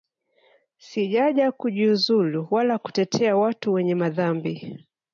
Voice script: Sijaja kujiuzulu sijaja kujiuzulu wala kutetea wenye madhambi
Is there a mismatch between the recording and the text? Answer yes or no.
yes